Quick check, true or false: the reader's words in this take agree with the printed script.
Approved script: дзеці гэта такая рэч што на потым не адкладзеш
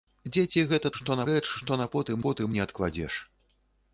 false